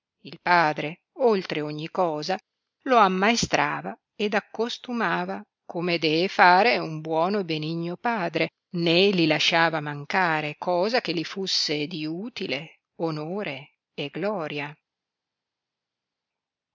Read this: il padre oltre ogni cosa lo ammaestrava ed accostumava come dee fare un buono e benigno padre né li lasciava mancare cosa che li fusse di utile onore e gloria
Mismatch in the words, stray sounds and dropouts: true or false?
false